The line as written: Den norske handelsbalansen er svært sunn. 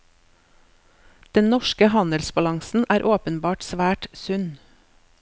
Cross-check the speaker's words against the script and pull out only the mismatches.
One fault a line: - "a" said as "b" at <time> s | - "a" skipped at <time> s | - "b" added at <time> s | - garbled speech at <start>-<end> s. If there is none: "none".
- "åpenbart" added at 3.1 s